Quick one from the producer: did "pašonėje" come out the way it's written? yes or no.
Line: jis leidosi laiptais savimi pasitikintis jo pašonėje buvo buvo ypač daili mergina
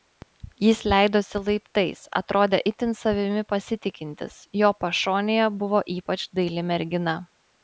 yes